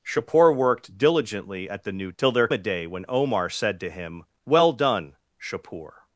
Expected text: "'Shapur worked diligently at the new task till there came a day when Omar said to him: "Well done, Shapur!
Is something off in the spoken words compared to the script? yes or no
yes